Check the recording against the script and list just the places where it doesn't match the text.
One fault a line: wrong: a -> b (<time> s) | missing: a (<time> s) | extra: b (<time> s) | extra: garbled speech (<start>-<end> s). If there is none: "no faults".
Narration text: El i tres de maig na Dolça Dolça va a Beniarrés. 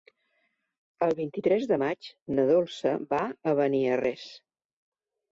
extra: vint (1.2 s)
missing: Dolça (2.9 s)